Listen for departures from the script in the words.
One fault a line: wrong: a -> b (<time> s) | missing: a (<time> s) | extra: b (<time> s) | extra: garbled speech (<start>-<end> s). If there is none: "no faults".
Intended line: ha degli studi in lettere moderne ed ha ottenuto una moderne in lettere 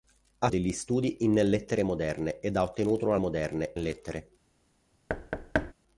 no faults